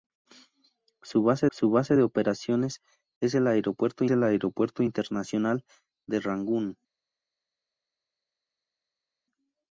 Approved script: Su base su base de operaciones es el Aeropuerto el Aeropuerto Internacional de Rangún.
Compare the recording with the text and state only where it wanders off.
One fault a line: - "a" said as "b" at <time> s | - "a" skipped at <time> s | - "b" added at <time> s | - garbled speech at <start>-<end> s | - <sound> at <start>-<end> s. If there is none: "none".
none